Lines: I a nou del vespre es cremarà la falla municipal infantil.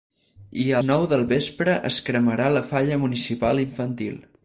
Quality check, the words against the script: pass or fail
pass